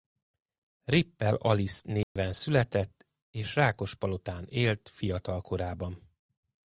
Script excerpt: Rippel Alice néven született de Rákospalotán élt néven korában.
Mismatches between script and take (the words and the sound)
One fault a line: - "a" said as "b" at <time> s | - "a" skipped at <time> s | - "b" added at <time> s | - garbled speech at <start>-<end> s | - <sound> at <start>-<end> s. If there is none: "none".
- dropout at 2.0-2.2 s
- "de" said as "és" at 3.3 s
- "néven" said as "fiatal" at 4.9 s